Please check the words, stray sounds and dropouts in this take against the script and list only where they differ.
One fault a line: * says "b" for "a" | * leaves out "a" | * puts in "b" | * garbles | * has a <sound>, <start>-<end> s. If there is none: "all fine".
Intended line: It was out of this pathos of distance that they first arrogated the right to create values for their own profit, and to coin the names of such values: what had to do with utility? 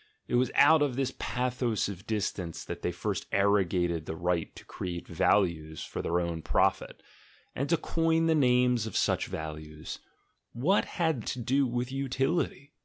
all fine